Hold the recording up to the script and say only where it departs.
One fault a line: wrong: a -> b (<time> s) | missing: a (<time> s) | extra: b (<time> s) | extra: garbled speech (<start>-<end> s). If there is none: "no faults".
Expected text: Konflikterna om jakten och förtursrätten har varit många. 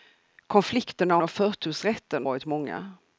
missing: om jakten (1.2 s)
missing: har (2.3 s)